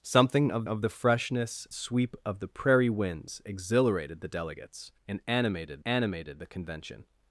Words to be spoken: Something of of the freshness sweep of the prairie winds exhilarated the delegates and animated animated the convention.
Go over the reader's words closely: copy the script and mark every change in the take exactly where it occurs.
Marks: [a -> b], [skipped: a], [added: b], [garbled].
Something of of the freshness sweep of the prairie winds exhilarated the delegates and animated animated the convention.